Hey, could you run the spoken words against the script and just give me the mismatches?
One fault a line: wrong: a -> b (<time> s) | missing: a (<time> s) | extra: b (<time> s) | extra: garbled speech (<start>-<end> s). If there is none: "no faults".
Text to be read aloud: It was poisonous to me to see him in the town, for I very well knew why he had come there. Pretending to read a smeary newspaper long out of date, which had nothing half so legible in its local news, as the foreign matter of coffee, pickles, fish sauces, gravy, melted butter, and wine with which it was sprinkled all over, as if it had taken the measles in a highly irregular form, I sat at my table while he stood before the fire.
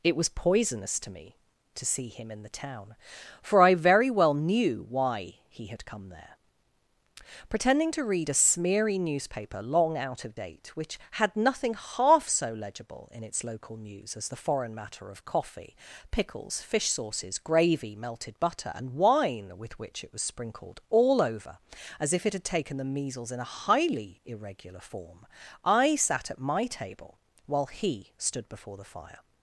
no faults